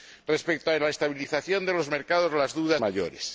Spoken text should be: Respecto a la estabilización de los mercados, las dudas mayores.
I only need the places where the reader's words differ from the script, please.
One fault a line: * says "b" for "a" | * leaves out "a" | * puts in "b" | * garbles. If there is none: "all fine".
all fine